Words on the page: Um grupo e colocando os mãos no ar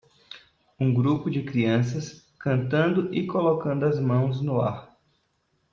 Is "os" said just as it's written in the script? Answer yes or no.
no